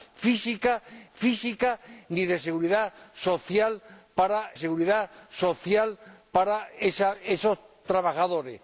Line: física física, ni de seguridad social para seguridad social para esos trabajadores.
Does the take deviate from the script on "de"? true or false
false